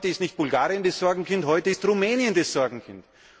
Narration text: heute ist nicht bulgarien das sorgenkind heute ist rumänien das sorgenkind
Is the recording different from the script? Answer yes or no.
no